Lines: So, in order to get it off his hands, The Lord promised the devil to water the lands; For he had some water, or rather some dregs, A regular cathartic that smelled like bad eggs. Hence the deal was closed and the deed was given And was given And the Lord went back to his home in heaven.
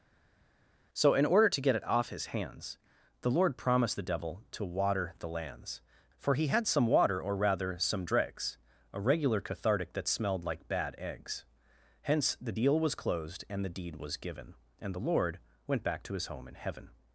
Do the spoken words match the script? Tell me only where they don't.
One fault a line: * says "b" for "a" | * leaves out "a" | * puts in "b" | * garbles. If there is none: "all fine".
* leaves out "was given And"